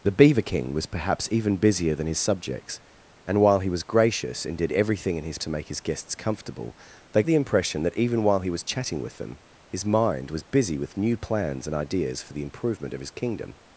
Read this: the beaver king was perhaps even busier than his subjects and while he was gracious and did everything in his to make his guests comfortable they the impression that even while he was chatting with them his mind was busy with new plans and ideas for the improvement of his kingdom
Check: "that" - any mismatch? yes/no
no